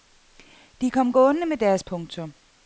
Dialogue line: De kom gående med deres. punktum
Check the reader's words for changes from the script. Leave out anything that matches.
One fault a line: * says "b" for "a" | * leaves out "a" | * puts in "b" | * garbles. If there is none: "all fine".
all fine